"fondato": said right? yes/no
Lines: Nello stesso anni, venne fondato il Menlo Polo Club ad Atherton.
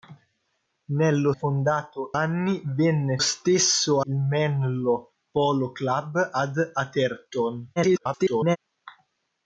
no